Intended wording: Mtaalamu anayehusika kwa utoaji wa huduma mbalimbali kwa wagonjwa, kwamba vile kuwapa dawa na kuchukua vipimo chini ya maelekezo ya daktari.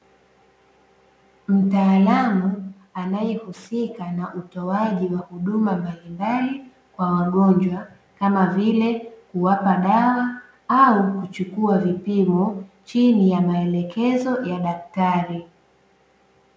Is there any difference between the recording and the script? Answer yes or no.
yes